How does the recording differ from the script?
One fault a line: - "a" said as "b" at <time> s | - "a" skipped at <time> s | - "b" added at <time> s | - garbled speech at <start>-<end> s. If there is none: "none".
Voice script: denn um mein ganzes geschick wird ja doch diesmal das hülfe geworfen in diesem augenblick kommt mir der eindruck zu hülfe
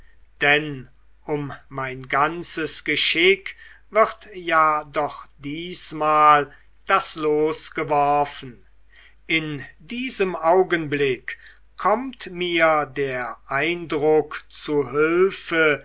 - "hülfe" said as "los" at 7.2 s